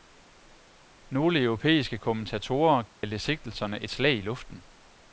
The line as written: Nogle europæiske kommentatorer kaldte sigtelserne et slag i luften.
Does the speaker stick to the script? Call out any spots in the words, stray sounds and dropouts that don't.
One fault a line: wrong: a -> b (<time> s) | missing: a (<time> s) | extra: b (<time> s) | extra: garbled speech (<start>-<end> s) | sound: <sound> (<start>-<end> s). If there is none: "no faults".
sound: dropout (2.9-3.0 s)